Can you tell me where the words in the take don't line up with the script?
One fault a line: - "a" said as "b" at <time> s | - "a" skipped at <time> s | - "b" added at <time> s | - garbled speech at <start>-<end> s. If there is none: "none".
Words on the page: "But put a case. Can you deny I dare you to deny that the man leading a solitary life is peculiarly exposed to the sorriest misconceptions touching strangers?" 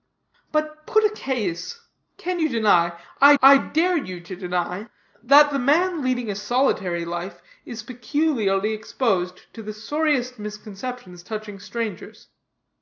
- "I" added at 3.4 s